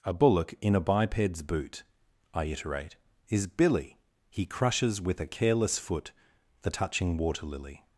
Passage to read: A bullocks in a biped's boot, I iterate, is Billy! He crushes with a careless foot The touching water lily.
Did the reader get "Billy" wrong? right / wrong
right